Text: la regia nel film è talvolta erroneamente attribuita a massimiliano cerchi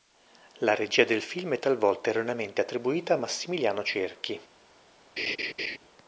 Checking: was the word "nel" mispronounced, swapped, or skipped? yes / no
yes